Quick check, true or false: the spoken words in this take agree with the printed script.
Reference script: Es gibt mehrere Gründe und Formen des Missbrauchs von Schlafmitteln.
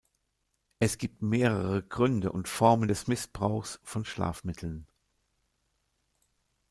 true